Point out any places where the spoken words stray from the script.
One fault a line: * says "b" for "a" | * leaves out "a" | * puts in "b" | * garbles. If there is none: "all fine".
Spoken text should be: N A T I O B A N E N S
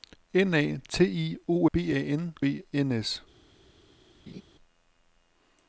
all fine